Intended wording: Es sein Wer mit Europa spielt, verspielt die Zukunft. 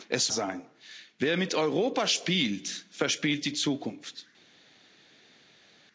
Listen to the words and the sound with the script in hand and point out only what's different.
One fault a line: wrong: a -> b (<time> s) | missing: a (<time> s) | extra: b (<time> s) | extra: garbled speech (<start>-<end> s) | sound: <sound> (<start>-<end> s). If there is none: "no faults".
no faults